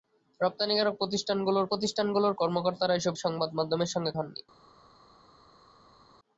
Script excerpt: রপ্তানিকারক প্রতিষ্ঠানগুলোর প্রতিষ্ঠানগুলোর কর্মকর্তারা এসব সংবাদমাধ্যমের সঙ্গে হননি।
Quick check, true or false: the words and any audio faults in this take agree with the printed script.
true